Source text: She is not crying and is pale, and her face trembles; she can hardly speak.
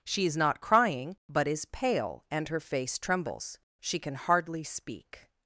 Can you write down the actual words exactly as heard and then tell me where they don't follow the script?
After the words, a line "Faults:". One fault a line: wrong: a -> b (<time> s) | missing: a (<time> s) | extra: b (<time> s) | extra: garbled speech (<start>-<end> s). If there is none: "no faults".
She is not crying but is pale, and her face trembles; she can hardly speak.
Faults:
wrong: and -> but (1.3 s)